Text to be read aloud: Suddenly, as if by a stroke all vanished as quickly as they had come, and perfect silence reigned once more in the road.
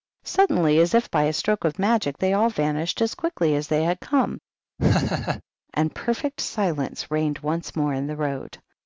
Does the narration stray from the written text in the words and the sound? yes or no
yes